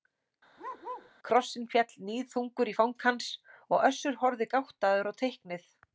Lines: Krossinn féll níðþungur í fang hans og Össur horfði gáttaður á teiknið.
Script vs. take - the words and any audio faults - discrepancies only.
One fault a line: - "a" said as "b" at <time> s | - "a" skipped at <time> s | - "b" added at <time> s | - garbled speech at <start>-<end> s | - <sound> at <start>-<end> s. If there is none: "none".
- bark at 0.6-1.1 s